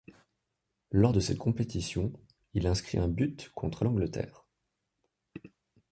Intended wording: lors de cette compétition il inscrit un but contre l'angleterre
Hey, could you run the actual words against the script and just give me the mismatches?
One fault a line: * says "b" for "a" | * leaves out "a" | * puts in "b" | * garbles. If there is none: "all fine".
all fine